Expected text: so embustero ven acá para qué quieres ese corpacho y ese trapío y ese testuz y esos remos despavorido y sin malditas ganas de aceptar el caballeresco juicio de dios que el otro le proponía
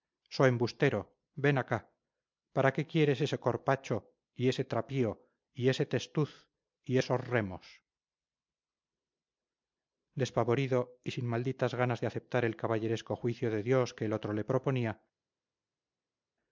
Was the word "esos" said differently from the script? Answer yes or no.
no